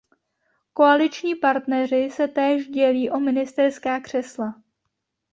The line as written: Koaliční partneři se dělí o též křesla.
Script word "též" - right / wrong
wrong